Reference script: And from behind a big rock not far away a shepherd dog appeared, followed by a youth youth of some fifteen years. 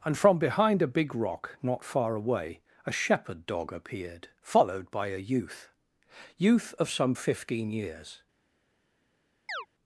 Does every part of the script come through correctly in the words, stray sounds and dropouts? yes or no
no